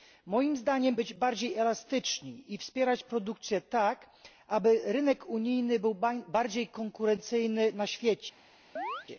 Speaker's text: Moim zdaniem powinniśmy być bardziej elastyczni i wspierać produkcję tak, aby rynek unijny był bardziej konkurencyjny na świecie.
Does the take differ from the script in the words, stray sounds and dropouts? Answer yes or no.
yes